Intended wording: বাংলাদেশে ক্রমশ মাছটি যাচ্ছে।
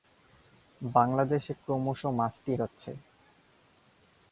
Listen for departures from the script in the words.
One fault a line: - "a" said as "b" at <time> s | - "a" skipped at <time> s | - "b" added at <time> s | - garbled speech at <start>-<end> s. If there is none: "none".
none